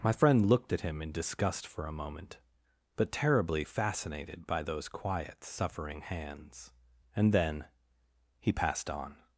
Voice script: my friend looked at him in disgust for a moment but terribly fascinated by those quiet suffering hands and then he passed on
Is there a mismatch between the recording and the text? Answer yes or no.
no